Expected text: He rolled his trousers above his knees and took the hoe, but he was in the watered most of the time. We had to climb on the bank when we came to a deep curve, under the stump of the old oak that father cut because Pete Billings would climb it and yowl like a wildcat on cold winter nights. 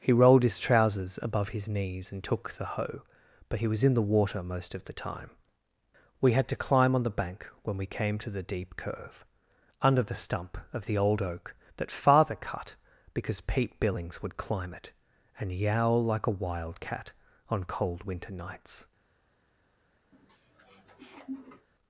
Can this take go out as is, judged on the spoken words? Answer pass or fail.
fail